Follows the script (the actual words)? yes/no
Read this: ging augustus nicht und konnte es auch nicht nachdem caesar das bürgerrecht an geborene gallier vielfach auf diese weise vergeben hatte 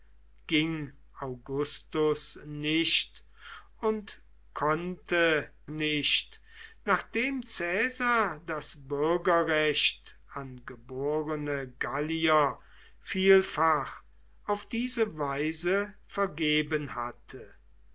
no